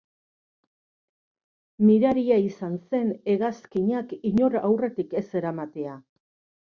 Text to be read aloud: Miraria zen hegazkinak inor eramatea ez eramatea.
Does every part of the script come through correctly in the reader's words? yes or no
no